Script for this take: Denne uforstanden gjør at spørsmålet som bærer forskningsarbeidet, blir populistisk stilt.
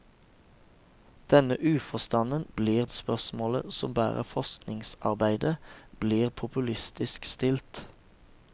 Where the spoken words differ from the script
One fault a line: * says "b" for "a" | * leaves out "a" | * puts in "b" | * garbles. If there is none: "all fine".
* says "blir" for "gjør"